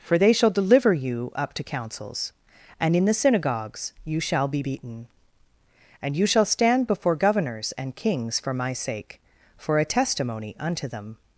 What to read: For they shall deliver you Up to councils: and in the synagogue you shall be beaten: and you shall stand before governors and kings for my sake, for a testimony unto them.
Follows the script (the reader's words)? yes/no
no